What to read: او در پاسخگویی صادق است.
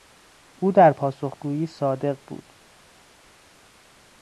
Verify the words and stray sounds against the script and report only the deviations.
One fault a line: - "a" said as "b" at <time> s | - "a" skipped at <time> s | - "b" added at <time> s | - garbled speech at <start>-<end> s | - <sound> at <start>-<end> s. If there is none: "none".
- "است" said as "بود" at 2.3 s